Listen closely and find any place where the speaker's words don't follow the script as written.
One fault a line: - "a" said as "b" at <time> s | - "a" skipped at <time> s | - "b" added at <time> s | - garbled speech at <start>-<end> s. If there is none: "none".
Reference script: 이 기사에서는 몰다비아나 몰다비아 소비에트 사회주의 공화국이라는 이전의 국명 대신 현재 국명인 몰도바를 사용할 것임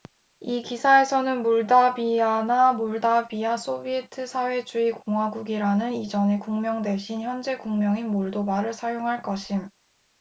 none